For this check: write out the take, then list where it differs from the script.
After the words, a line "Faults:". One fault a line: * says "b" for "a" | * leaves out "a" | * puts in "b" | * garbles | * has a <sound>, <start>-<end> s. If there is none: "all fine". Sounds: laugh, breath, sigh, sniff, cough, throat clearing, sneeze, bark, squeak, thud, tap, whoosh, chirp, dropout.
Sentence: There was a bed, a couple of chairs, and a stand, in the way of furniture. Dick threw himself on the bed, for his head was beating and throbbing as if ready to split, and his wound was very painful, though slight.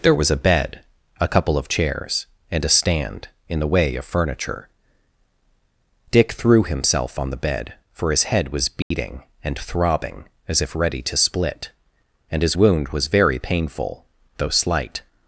There was a bed, a couple of chairs, and a stand, in the way of furniture. Dick threw himself on the bed, for his head was beating and throbbing as if ready to split, and his wound was very painful, though slight.
Faults:
* has a dropout, 8.8-8.9 s